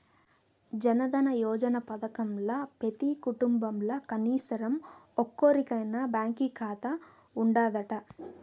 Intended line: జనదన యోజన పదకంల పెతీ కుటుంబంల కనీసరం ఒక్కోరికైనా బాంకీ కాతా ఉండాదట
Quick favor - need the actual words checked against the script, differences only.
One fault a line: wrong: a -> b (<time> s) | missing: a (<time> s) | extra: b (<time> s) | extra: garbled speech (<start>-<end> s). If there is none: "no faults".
no faults